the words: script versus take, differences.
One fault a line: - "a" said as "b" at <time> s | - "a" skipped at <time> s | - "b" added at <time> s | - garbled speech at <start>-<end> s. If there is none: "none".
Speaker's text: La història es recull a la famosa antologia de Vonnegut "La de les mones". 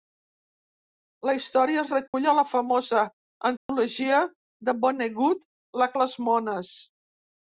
none